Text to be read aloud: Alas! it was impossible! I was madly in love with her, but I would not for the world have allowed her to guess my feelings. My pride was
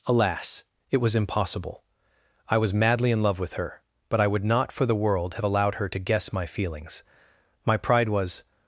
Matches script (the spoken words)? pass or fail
pass